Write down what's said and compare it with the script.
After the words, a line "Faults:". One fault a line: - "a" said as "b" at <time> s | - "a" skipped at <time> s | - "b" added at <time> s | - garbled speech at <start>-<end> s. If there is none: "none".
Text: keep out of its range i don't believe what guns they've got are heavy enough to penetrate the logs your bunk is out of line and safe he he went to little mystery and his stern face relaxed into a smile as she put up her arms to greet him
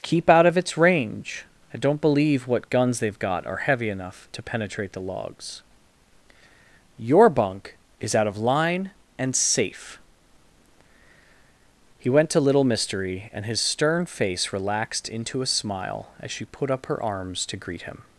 keep out of its range i don't believe what guns they've got are heavy enough to penetrate the logs your bunk is out of line and safe he went to little mystery and his stern face relaxed into a smile as she put up her arms to greet him
Faults:
- "he" skipped at 12.1 s